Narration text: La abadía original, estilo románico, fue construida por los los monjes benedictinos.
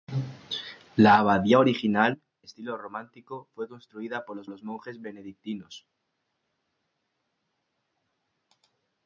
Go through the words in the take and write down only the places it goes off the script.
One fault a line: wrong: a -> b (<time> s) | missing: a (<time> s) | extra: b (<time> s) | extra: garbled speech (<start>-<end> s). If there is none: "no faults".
no faults